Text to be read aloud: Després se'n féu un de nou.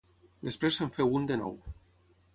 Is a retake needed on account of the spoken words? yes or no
no